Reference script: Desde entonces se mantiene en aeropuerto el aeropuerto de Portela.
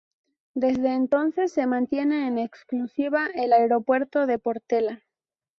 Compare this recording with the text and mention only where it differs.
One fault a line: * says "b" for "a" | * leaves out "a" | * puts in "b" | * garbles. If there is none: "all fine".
* says "exclusiva" for "aeropuerto"